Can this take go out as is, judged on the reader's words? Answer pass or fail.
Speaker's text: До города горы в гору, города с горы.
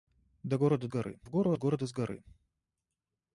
pass